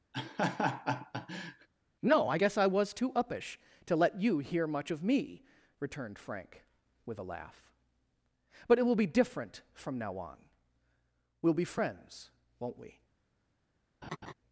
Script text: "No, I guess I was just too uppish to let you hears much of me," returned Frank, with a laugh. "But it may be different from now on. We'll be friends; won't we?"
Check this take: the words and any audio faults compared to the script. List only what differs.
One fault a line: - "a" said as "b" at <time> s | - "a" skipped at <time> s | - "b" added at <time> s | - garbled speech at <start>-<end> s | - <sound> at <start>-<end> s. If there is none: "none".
- laugh at 0.1-1.7 s
- "just" skipped at 2.9 s
- "hears" said as "hear" at 4.4 s
- "may" said as "will" at 8.8 s
- laugh at 14.0-14.3 s